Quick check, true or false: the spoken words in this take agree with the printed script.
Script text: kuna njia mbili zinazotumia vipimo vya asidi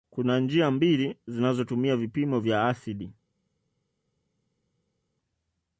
true